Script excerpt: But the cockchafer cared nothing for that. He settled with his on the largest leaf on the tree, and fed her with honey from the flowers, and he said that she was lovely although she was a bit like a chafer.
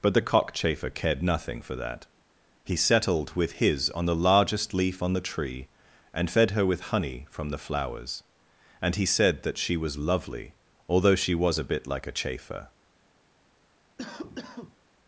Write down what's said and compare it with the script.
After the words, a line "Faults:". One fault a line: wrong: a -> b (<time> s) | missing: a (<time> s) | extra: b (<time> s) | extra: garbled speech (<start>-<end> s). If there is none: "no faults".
But the cockchafer cared nothing for that. He settled with his on the largest leaf on the tree, and fed her with honey from the flowers, and he said that she was lovely although she was a bit like a chafer.
Faults:
no faults